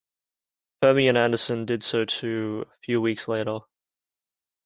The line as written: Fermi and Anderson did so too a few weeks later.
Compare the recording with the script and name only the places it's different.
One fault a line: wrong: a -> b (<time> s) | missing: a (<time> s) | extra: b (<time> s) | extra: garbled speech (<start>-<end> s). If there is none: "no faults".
no faults